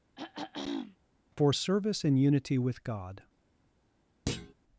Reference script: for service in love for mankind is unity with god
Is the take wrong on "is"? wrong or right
wrong